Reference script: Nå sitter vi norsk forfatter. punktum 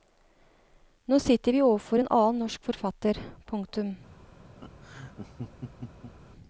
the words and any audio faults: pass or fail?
fail